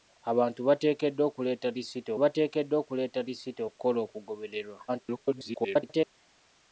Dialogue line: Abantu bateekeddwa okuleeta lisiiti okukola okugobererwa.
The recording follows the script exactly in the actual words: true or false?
false